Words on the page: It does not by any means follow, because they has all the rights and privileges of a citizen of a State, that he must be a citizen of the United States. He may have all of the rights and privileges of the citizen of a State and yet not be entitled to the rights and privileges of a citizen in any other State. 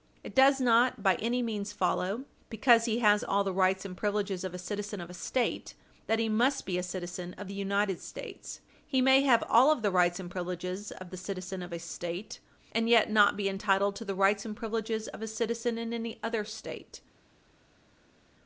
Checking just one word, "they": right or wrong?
wrong